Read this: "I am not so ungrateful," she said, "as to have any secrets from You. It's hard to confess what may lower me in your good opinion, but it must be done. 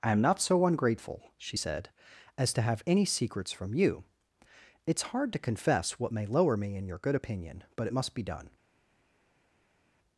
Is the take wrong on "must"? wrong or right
right